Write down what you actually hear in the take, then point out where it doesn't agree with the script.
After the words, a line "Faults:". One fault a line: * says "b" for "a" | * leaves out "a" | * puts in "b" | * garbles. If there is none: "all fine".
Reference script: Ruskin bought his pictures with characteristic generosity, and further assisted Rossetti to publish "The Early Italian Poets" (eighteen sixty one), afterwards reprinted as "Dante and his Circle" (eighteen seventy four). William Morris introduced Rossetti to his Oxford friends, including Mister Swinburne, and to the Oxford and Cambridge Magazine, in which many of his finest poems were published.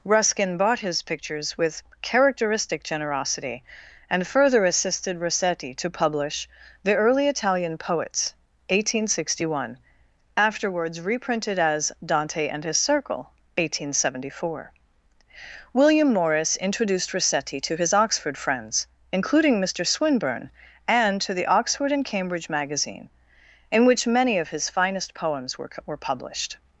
Ruskin bought his pictures with characteristic generosity, and further assisted Rossetti to publish "The Early Italian Poets" (eighteen sixty one), afterwards reprinted as "Dante and his Circle" (eighteen seventy four). William Morris introduced Rossetti to his Oxford friends, including Mister Swinburne, and to the Oxford and Cambridge Magazine, in which many of his finest poems were were published.
Faults:
* puts in "were"